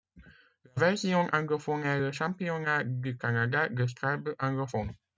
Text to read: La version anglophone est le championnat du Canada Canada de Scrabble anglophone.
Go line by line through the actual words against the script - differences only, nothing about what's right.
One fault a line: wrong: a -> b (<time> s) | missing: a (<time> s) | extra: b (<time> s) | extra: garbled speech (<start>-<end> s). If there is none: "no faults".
missing: Canada (3.7 s)